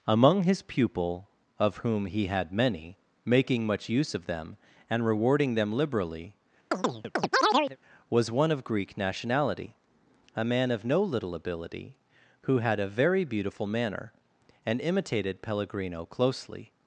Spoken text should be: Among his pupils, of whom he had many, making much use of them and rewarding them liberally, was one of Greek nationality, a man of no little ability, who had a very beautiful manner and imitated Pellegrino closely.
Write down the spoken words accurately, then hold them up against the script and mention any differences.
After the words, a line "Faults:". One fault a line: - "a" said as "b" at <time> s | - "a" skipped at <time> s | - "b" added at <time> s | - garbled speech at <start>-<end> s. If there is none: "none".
Among his pupil, of whom he had many, making much use of them and rewarding them liberally, was one of Greek nationality, a man of no little ability, who had a very beautiful manner and imitated Pellegrino closely.
Faults:
- "pupils" said as "pupil" at 0.6 s